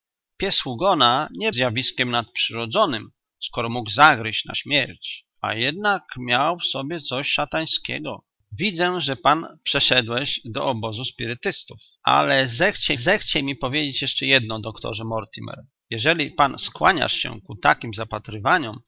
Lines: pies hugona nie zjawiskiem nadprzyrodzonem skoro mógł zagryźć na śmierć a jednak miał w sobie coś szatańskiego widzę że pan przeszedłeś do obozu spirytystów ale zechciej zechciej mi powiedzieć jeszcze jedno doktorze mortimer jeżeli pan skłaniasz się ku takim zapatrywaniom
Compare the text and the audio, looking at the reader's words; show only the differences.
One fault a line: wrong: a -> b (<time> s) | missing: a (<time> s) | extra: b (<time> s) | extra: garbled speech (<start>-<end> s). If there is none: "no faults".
no faults